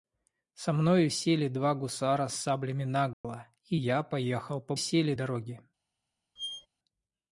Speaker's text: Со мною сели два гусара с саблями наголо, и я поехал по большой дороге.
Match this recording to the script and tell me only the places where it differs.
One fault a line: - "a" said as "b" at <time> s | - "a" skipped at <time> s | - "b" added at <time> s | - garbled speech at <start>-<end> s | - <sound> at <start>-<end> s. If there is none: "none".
- dropout at 3.1-3.2 s
- "большой" said as "сели" at 4.8 s
- squeak at 6.4-6.7 s